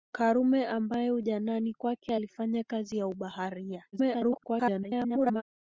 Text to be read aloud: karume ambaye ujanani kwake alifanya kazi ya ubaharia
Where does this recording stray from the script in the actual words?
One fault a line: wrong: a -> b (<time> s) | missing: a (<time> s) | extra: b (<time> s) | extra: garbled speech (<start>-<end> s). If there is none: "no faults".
extra: garbled speech (3.9-5.4 s)